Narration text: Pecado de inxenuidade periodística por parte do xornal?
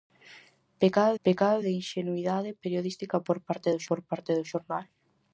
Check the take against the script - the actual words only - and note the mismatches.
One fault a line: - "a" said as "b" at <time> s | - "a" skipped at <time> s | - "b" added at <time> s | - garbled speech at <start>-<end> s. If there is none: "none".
- "pecado" added at 1.2 s
- "por parte do" added at 3.9 s